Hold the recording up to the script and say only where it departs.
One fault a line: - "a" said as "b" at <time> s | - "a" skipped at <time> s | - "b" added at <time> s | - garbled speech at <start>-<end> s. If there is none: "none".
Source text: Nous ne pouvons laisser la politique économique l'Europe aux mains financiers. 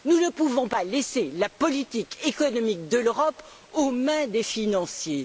- "pas" added at 0.6 s
- "de" added at 2.9 s
- "des" added at 4.3 s